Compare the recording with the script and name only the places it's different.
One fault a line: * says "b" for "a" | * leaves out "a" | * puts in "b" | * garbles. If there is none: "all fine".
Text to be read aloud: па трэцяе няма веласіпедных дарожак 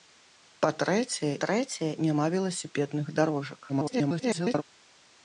* puts in "трэцяе"
* garbles